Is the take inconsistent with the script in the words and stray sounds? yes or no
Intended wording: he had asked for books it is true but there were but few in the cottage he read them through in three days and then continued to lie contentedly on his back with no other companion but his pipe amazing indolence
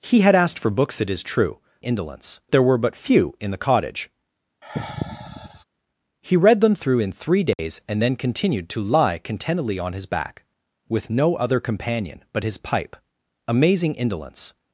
yes